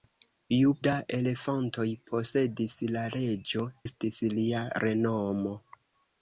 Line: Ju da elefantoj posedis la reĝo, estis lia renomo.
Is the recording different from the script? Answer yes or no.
no